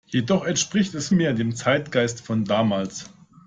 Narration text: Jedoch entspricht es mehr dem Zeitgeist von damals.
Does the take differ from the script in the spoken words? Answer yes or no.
no